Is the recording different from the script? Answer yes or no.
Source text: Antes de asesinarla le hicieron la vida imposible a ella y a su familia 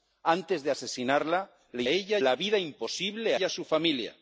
yes